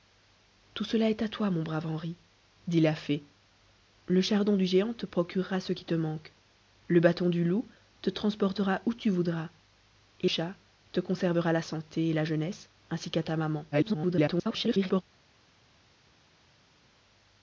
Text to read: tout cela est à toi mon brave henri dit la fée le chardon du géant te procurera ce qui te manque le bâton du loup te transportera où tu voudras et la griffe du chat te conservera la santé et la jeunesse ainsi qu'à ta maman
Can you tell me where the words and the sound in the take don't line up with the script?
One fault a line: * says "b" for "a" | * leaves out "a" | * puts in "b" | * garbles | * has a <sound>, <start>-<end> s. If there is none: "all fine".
* leaves out "la griffe du"
* garbles